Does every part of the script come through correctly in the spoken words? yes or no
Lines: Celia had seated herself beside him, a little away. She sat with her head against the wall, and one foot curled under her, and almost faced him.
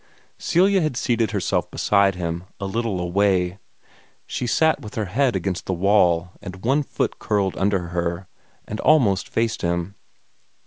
yes